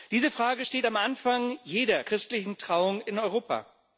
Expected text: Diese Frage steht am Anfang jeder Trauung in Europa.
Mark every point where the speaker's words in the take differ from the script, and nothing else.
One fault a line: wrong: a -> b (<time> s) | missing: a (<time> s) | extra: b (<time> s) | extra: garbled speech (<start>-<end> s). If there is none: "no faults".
extra: christlichen (2.0 s)